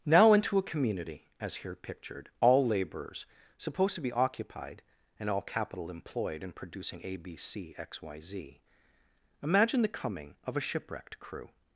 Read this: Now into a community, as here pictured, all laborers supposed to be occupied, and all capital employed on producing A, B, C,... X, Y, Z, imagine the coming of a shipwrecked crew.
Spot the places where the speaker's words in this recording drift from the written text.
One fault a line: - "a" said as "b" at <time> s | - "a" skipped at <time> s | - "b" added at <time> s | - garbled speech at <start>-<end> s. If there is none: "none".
- "on" said as "in" at 6.4 s